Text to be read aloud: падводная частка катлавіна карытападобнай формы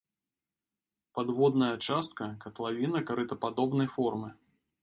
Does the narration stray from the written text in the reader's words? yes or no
no